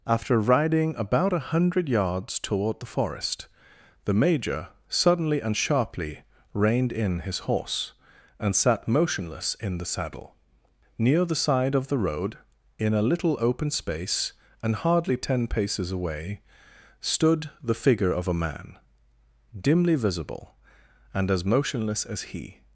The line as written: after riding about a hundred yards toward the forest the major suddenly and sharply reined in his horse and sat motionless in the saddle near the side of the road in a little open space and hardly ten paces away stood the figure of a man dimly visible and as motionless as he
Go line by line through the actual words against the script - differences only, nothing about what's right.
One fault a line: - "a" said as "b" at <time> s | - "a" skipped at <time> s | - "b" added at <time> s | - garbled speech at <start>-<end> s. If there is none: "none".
none